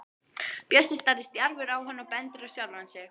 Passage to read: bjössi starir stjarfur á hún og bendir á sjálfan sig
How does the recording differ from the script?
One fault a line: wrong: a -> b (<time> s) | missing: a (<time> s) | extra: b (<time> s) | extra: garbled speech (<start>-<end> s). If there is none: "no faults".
wrong: hún -> hann (1.9 s)